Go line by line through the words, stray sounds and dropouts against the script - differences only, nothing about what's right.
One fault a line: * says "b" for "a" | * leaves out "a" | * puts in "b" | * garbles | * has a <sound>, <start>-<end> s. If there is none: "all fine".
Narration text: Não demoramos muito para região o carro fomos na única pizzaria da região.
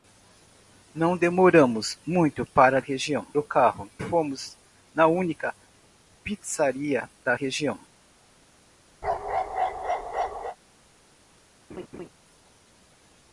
* has a bark, 9.0-10.6 s
* has a laugh, 11.7-12.1 s